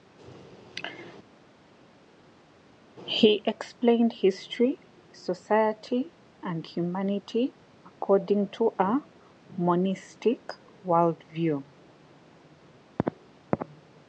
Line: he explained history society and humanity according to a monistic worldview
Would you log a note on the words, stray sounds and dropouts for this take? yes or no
no